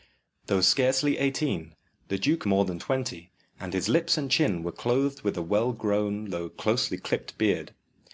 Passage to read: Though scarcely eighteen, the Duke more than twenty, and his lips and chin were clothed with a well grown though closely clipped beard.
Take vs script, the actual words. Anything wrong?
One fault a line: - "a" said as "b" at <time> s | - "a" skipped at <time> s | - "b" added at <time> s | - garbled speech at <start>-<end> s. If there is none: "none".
none